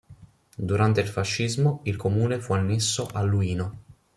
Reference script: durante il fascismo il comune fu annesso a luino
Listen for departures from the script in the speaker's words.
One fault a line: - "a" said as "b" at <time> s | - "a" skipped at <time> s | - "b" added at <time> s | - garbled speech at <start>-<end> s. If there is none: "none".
none